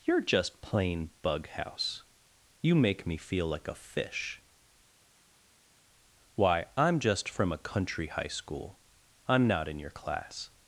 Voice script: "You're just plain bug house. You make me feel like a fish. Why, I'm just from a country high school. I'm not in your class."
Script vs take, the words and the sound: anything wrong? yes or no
no